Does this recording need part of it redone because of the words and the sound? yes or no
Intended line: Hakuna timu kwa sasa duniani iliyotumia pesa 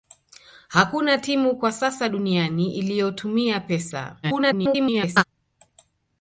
yes